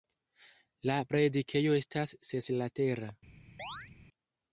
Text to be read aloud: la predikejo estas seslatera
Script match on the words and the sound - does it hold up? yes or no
no